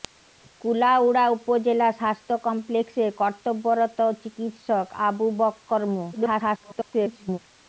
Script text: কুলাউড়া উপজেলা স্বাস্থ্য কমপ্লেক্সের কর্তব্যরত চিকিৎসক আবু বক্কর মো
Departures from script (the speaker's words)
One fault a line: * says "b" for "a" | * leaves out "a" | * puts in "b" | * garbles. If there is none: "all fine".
* garbles